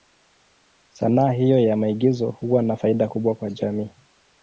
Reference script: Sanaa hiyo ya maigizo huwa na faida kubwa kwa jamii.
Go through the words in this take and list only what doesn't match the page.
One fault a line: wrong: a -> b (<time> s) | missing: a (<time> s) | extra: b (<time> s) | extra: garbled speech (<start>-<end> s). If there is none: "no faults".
no faults